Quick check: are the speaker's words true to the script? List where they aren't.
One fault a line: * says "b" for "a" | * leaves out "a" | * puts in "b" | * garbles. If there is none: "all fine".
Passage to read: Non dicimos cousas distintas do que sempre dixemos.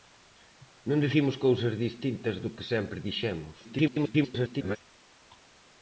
* garbles